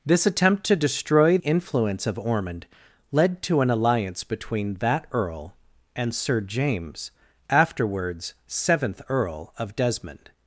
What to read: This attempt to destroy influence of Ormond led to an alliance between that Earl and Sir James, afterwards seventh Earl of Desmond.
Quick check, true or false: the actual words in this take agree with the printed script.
true